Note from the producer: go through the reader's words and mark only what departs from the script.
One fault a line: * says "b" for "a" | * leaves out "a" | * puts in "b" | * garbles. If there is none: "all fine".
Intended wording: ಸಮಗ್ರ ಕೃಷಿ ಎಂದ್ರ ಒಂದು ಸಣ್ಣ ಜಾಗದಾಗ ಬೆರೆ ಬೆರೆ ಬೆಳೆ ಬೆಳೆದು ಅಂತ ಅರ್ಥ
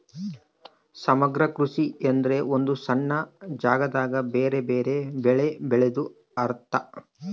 * leaves out "ಅಂತ"